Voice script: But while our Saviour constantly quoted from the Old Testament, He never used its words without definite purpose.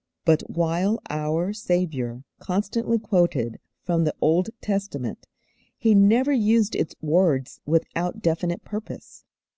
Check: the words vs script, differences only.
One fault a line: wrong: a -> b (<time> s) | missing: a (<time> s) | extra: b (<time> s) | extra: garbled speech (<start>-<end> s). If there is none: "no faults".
no faults